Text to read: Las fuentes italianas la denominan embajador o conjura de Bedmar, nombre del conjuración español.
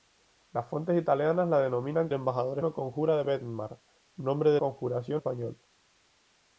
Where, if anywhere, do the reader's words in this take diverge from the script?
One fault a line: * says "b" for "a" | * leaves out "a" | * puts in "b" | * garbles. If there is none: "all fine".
all fine